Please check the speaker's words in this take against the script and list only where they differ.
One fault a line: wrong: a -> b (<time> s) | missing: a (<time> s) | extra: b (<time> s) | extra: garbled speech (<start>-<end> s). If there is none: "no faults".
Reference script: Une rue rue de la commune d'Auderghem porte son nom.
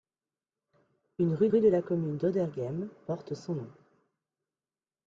no faults